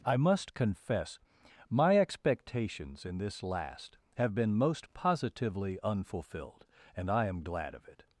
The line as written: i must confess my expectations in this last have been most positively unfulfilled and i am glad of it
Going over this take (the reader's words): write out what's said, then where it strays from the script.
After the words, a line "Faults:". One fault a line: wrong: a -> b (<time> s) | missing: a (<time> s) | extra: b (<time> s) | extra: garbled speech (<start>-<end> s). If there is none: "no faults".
i must confess my expectations in this last have been most positively unfulfilled and i am glad of it
Faults:
no faults